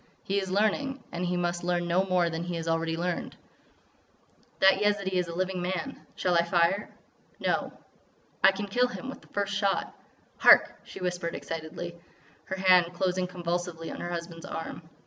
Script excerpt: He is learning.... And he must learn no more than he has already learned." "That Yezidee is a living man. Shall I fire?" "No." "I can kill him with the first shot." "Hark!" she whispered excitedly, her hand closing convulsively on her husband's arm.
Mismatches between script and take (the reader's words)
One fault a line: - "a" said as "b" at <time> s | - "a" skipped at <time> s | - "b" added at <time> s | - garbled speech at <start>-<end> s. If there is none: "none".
none